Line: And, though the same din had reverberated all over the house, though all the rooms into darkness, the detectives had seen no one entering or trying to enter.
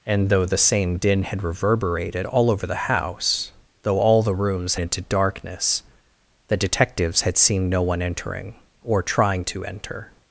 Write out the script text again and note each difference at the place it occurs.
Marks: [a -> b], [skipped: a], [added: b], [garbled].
And, though the same din had reverberated all over the house, though all the rooms into darkness, the detectives had seen no one entering or trying to enter.